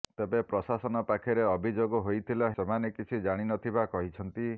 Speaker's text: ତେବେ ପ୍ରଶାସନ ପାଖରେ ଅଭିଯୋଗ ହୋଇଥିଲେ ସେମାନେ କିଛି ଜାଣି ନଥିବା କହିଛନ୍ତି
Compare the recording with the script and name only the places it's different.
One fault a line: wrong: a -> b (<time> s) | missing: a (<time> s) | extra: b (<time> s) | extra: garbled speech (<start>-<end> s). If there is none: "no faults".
no faults